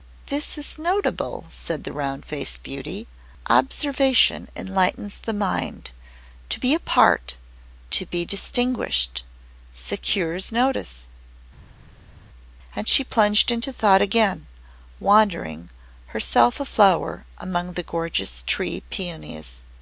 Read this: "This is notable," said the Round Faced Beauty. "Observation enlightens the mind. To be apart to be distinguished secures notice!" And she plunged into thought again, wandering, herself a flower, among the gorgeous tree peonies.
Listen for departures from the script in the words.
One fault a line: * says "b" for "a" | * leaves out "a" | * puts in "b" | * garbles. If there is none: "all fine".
all fine